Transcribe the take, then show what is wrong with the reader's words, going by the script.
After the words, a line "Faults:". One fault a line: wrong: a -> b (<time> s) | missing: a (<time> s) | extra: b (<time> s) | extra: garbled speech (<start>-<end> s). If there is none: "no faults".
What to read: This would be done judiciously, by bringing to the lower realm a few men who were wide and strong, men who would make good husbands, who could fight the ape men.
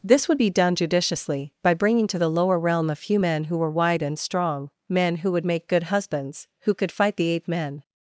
This would be done judiciously, by bringing to the lower realm a few men who were wide and strong, men who would make good husbands, who could fight the ape men.
Faults:
no faults